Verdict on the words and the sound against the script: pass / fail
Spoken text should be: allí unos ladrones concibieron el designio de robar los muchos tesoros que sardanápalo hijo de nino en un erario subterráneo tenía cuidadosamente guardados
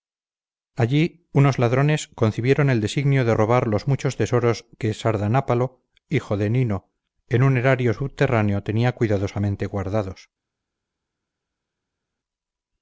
pass